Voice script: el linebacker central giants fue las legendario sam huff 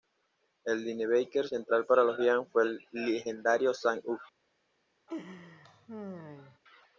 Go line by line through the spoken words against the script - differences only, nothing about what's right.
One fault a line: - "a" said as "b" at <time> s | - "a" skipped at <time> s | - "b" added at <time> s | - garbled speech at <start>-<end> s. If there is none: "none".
- "para los" added at 1.8 s
- "las" said as "el" at 2.6 s